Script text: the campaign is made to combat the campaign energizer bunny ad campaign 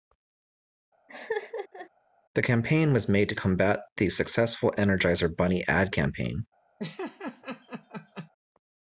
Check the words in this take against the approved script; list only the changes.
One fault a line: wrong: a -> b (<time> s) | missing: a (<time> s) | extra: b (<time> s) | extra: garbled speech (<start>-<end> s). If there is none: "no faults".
wrong: is -> was (2.9 s)
wrong: campaign -> successful (4.1 s)